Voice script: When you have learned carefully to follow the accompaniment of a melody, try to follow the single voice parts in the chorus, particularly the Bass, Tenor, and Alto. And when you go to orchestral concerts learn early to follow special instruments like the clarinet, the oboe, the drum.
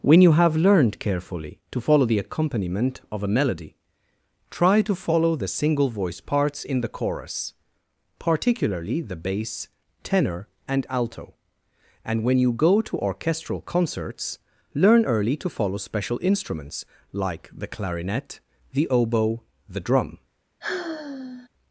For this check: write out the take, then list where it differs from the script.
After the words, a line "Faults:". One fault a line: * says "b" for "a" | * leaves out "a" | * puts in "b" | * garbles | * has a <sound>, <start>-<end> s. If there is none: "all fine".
When you have learned carefully to follow the accompaniment of a melody, try to follow the single voice parts in the chorus, particularly the Bass, Tenor, and Alto. And when you go to orchestral concerts learn early to follow special instruments like the clarinet, the oboe, the drum.
Faults:
* has a sigh, 20.6-21.5 s